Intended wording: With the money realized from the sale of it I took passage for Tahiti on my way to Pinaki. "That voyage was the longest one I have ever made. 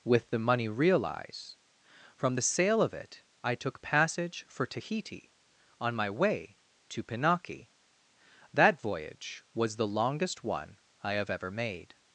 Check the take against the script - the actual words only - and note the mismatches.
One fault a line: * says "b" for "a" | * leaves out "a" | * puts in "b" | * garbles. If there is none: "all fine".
* says "realize" for "realized"